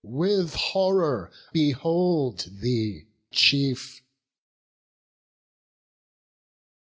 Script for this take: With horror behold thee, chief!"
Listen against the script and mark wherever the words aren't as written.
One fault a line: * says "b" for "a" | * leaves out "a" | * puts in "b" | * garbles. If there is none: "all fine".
all fine